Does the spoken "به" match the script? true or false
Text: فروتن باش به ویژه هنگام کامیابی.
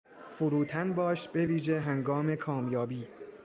true